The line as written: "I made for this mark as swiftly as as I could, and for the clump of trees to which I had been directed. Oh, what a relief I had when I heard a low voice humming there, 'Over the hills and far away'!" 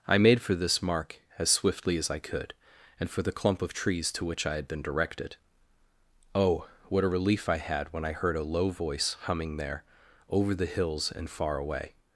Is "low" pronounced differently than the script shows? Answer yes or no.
no